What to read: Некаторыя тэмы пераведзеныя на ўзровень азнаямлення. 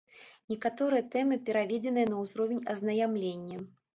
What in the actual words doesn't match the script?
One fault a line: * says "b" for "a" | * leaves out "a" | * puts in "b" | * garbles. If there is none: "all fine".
all fine